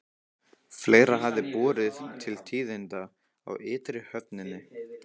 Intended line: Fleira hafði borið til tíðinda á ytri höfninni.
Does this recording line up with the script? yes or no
yes